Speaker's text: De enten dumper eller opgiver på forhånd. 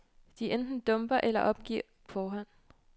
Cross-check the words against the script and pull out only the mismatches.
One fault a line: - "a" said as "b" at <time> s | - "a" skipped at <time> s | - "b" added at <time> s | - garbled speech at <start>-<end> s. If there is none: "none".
- "på" skipped at 1.8 s